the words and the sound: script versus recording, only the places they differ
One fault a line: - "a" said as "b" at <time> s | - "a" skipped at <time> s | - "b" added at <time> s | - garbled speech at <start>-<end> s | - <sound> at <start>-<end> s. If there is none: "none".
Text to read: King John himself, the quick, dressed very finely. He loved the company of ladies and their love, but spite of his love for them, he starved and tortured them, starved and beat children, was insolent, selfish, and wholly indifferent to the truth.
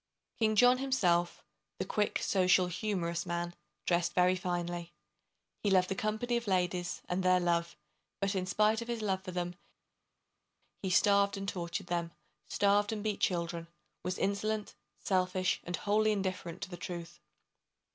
- "social humorous man" added at 2.2 s
- "in" added at 8.3 s